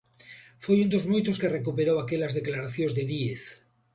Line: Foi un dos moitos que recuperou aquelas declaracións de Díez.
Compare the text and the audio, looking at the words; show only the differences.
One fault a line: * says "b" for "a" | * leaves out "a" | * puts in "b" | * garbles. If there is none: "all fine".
all fine